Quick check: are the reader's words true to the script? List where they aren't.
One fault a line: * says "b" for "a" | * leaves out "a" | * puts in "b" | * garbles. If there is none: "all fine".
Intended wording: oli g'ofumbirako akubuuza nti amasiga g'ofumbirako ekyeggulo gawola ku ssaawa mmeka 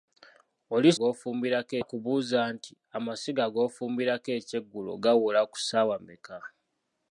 all fine